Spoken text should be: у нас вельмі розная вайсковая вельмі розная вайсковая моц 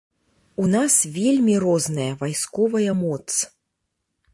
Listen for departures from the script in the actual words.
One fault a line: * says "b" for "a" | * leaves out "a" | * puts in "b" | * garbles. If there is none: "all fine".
* leaves out "вельмі розная вайсковая"